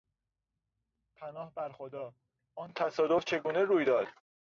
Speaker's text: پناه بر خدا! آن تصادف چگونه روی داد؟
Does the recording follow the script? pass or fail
pass